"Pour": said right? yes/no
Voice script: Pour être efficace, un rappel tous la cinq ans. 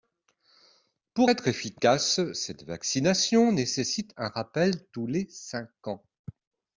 yes